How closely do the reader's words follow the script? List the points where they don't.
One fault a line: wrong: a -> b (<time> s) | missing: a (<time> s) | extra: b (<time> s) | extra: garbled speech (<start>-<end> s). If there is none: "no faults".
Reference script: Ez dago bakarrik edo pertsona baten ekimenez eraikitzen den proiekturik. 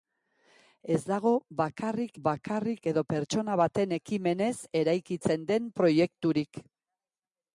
extra: bakarrik (2.3 s)